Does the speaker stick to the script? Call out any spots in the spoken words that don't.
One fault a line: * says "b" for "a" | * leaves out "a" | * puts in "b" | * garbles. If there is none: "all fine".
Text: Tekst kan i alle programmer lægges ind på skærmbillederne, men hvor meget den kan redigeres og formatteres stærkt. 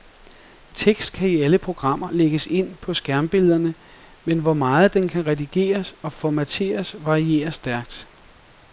* puts in "varierer"